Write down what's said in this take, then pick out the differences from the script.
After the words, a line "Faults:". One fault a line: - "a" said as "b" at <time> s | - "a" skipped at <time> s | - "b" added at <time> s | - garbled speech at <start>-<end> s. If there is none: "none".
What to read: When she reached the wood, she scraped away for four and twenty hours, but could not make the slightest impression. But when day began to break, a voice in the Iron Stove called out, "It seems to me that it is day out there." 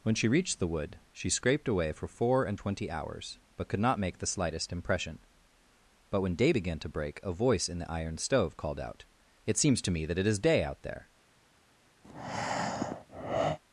When she reached the wood, she scraped away for four and twenty hours, but could not make the slightest impression. But when day began to break, a voice in the Iron Stove called out, "It seems to me that it is day out there."
Faults:
none